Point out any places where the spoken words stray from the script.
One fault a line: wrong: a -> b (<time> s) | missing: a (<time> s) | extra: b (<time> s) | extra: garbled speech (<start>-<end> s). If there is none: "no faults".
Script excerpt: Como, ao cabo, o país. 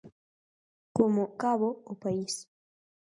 missing: ao (1.2 s)